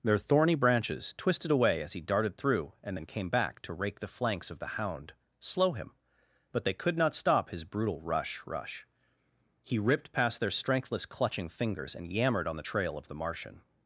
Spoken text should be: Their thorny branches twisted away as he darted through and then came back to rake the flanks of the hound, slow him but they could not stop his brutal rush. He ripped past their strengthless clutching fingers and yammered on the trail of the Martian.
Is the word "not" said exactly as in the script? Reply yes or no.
yes